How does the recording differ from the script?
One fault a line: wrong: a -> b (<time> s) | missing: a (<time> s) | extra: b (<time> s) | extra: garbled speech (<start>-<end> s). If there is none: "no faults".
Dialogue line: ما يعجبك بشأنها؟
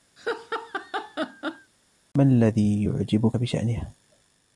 extra: الذي (2.2 s)